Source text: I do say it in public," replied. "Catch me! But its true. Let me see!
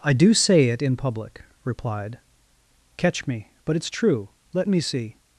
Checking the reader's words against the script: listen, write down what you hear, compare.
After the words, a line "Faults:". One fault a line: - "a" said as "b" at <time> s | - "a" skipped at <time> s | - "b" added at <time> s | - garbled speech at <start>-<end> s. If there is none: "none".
I do say it in public," replied. "Catch me! But its true. Let me see!
Faults:
none